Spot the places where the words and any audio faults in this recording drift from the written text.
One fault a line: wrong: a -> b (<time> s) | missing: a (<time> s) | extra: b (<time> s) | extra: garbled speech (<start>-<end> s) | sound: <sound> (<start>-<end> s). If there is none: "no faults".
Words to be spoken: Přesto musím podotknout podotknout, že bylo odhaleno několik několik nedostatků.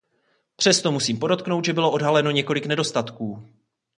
missing: podotknout (1.6 s)
missing: několik (2.6 s)